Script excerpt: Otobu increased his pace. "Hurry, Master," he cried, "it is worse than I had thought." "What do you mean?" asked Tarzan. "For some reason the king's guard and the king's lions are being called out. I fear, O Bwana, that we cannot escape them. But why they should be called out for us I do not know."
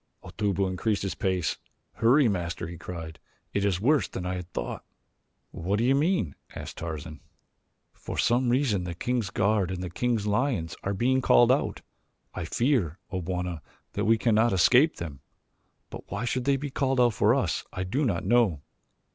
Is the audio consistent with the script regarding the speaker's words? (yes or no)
yes